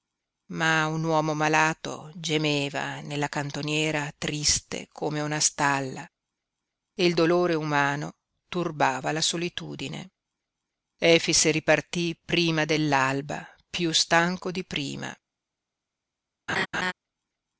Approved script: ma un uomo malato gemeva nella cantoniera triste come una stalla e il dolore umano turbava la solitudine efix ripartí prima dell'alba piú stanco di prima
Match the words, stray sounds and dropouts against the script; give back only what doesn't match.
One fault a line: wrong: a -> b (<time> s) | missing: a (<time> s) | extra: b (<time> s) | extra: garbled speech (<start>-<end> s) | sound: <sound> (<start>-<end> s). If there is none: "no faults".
sound: laugh (16.5-16.9 s)